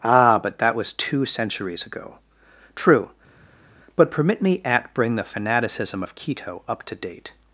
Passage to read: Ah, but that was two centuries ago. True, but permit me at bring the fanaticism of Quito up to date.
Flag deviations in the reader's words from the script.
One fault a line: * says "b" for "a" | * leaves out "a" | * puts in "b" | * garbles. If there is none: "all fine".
all fine